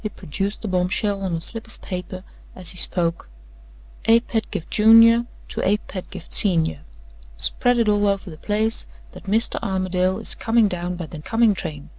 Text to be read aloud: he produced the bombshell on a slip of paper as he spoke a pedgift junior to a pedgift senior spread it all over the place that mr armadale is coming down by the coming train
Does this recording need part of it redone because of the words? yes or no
no